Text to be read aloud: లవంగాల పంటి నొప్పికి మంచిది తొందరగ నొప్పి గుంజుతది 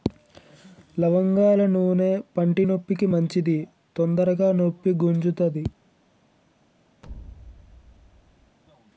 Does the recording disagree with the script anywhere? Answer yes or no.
yes